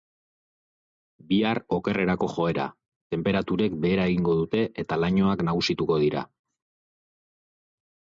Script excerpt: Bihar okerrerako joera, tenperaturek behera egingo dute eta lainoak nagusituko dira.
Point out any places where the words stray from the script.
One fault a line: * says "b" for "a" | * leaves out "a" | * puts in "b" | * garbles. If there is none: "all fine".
all fine